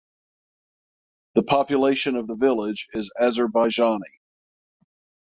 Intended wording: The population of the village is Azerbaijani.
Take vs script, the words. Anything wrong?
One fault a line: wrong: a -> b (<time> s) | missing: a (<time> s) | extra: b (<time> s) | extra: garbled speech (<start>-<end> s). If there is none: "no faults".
no faults